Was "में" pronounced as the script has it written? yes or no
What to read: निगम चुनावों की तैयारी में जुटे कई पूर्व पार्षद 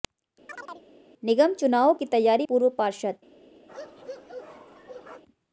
no